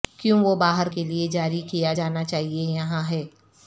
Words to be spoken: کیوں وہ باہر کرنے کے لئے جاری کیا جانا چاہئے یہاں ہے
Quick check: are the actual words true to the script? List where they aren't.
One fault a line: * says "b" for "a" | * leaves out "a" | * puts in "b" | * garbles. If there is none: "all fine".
* leaves out "کرنے"